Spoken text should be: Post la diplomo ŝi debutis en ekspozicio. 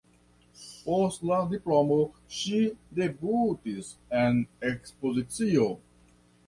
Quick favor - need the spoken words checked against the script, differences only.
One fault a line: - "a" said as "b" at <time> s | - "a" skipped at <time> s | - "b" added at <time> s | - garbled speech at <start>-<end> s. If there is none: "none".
none